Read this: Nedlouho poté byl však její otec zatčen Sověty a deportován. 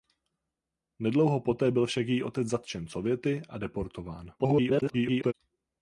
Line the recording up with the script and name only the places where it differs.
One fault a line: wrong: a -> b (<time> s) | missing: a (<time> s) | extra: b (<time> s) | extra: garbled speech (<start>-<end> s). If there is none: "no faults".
extra: garbled speech (4.4-5.3 s)